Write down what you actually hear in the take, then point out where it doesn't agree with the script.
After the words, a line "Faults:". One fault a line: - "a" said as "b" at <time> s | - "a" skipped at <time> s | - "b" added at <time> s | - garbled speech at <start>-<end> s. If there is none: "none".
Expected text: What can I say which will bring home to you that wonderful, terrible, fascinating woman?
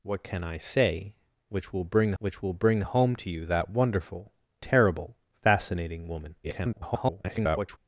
What can I say which will bring which will bring home to you that wonderful, terrible, fascinating woman? [garbled]
Faults:
- "which will bring" added at 2.2 s
- garbled speech at 6.4-7.8 s